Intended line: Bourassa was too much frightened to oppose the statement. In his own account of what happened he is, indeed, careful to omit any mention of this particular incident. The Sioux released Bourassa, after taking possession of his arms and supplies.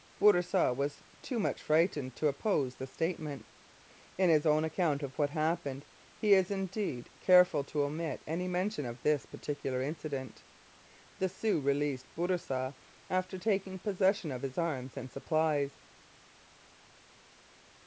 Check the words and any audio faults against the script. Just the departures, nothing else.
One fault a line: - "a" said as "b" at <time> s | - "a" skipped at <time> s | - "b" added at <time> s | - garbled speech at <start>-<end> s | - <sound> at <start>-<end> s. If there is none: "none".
none